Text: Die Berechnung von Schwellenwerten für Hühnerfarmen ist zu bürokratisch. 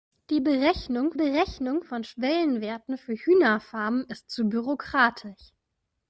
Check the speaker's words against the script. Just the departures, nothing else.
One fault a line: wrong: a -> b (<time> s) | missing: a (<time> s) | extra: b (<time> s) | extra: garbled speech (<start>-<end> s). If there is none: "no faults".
extra: Berechnung (1.1 s)